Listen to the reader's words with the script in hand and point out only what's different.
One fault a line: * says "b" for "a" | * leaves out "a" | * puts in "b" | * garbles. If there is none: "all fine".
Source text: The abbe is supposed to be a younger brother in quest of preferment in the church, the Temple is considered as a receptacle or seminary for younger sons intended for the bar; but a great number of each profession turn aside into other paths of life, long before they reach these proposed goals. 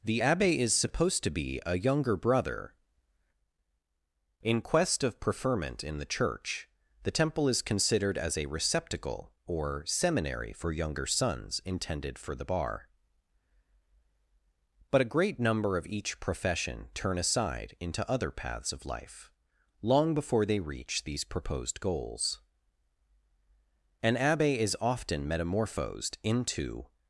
* puts in "An abbe is often metamorphosed into"